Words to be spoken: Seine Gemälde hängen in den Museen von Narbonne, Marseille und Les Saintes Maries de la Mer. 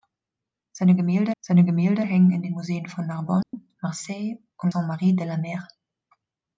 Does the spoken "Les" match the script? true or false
false